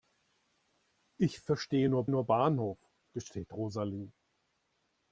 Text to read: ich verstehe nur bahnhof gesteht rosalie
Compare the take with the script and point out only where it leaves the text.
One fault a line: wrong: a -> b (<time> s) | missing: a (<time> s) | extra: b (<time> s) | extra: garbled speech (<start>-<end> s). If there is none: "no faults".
extra: nur (2.1 s)